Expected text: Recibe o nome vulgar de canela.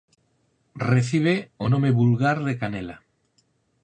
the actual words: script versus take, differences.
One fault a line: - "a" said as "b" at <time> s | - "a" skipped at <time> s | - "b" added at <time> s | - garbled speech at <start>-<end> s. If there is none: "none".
none